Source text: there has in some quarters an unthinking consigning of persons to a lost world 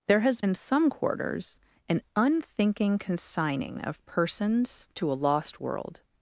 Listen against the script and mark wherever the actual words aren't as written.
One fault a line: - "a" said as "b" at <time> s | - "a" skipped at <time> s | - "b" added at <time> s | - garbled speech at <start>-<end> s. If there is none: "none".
none